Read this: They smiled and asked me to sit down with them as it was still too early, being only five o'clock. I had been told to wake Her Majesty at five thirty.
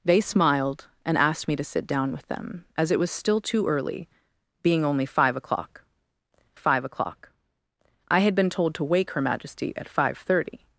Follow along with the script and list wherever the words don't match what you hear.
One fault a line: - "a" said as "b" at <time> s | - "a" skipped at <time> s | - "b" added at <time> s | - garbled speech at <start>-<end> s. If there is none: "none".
- "five o'clock" added at 6.5 s